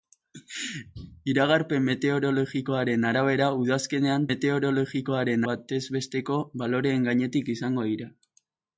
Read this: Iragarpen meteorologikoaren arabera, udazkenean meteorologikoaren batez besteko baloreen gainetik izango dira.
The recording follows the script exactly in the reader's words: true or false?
true